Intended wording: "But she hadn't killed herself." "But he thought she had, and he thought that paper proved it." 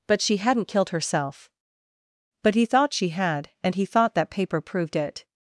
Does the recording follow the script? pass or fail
pass